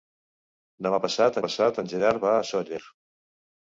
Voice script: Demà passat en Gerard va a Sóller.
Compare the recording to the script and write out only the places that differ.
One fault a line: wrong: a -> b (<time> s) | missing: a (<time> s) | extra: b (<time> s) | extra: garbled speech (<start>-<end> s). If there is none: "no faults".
extra: passat (1.4 s)